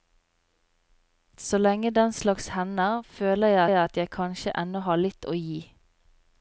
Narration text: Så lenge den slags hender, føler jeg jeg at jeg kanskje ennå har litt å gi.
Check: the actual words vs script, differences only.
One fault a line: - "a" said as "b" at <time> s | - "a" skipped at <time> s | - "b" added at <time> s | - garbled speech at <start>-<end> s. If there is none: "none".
none